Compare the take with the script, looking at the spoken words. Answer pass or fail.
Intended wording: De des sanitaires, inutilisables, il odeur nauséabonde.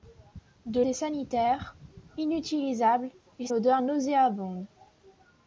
pass